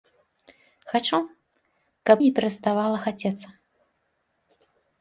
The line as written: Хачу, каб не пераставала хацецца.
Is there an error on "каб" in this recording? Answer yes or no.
no